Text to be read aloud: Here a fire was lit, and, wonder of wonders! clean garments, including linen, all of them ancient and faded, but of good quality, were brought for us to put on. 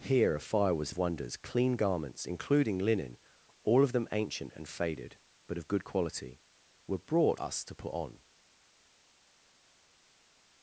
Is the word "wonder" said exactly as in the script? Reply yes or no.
no